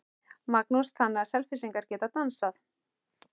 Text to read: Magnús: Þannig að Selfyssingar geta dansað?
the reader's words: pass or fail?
pass